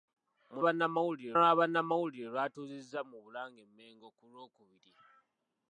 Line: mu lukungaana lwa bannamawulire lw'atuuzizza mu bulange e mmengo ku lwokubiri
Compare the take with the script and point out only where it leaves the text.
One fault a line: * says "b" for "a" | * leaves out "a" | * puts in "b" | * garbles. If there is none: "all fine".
* says "bannamawulire" for "lukungaana"